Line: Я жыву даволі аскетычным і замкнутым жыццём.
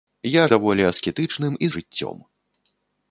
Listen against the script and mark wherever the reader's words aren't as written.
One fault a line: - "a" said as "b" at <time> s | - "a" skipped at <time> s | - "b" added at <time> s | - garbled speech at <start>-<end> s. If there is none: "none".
- "жыву" skipped at 0.4 s
- "замкнутым" skipped at 1.7 s